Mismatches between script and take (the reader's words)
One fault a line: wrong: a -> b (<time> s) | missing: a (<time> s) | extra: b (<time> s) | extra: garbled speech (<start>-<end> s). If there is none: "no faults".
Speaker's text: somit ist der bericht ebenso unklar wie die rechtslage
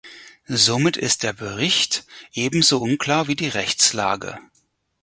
no faults